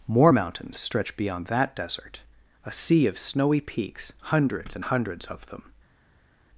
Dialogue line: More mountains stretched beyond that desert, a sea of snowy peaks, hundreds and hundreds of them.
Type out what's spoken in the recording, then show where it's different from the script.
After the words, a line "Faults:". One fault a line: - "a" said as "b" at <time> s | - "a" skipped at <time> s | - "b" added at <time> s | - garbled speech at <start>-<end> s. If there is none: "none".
More mountains stretch beyond that desert, a sea of snowy peaks, hundreds and hundreds of them.
Faults:
- "stretched" said as "stretch" at 0.8 s